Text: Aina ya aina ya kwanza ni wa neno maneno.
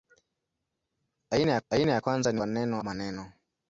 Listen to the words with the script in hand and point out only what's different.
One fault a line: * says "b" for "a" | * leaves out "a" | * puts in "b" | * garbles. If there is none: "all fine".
all fine